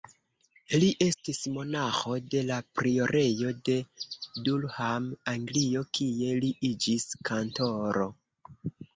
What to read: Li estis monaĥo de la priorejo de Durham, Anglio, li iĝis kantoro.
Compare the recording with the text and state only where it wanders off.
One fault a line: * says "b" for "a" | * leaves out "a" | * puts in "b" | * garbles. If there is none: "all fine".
* puts in "kie"